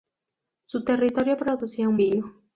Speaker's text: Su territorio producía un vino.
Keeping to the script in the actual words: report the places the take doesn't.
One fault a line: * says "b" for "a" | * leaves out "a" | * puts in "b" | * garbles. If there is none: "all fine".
all fine